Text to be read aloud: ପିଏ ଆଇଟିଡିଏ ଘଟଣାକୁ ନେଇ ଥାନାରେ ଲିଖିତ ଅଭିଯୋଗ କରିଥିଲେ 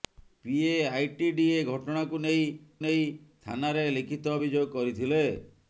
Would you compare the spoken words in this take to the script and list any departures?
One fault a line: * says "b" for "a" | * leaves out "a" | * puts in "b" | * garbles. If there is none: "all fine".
* puts in "ନେଇ"